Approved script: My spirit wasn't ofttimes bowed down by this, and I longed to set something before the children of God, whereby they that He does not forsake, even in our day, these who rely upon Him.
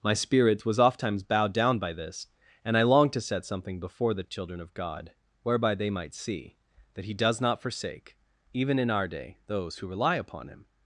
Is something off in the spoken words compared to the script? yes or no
yes